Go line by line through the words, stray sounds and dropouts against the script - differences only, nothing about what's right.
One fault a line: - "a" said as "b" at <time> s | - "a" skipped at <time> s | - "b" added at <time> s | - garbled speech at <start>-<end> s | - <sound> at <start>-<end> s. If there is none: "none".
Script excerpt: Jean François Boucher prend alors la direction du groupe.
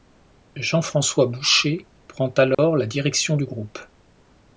- dropout at 2.5-2.6 s